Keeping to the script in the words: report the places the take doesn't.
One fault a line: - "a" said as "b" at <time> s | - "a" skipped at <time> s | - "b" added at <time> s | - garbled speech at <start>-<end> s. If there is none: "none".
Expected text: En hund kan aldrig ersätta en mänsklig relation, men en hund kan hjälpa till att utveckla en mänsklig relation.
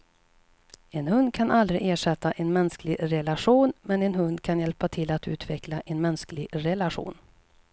none